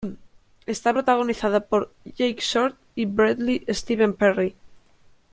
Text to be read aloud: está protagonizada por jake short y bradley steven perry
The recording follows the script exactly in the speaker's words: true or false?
true